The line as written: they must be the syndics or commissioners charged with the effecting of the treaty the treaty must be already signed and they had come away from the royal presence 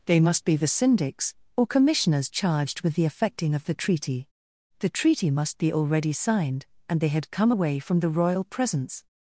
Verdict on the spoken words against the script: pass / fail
pass